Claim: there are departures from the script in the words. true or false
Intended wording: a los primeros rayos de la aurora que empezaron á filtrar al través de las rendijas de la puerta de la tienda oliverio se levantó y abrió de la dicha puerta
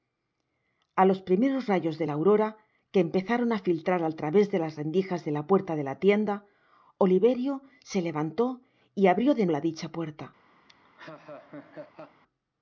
false